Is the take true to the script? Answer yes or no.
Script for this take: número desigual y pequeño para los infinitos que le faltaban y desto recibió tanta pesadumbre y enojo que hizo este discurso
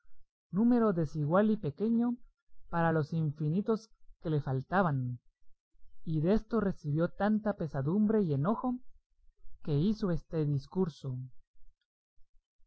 yes